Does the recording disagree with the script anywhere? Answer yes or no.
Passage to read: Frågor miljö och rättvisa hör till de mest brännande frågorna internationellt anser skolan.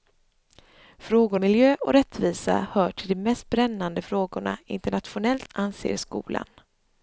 no